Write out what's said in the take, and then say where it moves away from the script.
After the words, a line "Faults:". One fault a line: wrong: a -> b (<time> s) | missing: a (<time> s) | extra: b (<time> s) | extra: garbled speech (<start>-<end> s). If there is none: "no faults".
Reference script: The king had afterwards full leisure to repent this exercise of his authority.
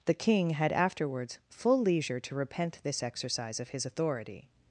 The king had afterwards full leisure to repent this exercise of his authority.
Faults:
no faults